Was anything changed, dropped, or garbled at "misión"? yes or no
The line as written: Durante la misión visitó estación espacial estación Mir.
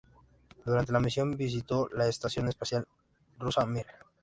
no